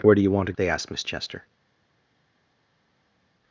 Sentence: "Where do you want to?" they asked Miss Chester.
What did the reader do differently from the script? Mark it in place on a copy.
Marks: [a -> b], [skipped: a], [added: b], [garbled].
"Where do you want to?" they asked Miss Chester.